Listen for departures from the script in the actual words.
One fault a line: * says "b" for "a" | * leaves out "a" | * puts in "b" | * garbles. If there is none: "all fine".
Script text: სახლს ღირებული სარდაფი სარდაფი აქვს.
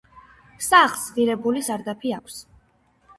* leaves out "სარდაფი"